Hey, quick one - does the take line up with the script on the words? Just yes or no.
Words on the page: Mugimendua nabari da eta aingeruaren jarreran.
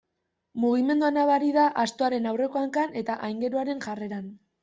no